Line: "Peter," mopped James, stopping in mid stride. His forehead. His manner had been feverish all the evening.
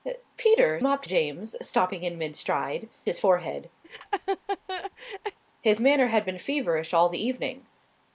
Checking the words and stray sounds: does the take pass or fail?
fail